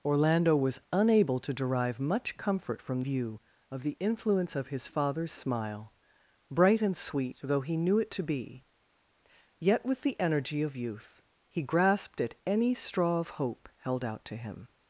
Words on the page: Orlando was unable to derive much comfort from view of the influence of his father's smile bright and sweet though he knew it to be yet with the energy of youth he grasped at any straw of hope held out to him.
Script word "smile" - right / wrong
right